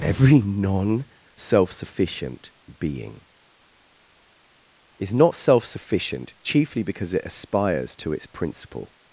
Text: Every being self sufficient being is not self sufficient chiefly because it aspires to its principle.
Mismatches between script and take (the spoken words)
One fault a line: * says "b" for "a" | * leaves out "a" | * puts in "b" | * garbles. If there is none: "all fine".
* says "non" for "being"